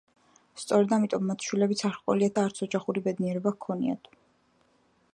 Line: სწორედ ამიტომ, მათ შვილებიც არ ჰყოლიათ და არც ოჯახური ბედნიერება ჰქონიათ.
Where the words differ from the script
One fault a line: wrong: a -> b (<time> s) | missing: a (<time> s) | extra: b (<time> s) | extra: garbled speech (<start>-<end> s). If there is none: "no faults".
no faults